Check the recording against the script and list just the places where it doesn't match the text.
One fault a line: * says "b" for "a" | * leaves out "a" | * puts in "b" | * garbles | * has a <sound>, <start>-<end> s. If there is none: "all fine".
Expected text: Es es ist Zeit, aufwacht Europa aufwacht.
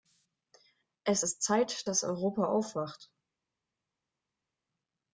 * leaves out "es"
* says "dass" for "aufwacht"